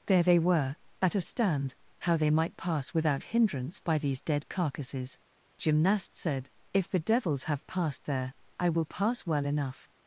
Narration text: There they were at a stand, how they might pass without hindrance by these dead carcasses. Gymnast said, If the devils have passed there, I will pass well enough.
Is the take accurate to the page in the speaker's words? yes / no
yes